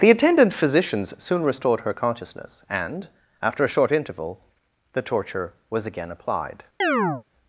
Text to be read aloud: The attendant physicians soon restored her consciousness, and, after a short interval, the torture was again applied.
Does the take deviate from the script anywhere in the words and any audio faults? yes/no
yes